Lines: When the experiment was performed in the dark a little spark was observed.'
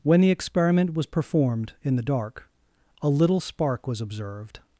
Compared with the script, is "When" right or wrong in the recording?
right